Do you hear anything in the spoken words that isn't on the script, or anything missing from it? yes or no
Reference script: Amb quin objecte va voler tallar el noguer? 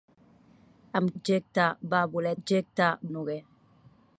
yes